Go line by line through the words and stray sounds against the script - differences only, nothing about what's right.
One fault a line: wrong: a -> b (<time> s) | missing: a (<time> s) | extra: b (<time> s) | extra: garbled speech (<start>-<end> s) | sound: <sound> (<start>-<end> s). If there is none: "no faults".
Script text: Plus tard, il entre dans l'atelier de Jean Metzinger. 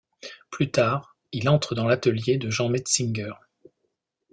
no faults